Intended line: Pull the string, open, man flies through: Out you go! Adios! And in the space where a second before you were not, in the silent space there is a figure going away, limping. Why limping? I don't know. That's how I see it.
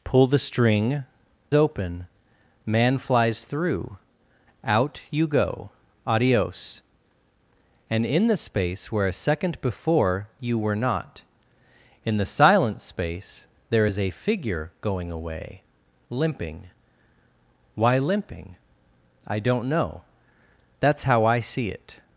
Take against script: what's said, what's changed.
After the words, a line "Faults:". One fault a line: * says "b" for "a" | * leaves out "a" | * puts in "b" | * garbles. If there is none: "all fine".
Pull the string, open, man flies through: Out you go! Adios! And in the space where a second before you were not, in the silent space there is a figure going away, limping. Why limping? I don't know. That's how I see it.
Faults:
all fine